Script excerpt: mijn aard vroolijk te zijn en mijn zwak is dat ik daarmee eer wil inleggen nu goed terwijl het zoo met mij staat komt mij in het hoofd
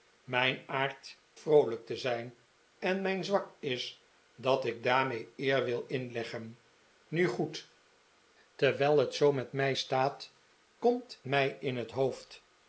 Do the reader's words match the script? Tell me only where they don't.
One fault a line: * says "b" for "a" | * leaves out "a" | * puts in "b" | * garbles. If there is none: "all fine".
all fine